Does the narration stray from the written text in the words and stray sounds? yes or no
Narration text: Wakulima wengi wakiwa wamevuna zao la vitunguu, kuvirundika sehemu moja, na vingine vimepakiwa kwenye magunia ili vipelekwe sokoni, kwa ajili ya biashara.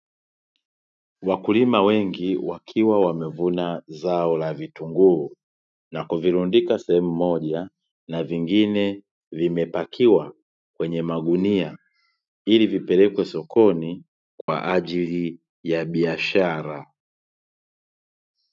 yes